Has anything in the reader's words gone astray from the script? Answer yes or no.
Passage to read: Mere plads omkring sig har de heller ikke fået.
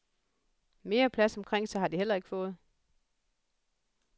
no